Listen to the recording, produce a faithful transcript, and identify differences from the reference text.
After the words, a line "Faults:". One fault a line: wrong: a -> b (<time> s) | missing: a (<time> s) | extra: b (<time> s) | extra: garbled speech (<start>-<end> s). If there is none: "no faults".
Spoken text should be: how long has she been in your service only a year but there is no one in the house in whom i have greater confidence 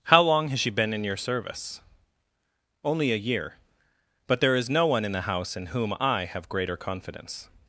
how long has she been in your service only a year but there is no one in the house in whom i have greater confidence
Faults:
no faults